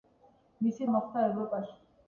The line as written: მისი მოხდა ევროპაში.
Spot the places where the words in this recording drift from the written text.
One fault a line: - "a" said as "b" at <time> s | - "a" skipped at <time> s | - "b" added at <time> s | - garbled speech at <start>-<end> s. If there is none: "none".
none